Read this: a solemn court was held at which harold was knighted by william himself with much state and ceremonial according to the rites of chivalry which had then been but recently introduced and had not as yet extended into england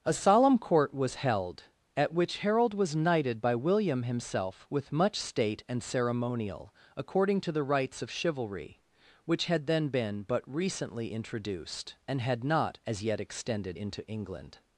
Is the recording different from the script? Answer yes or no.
no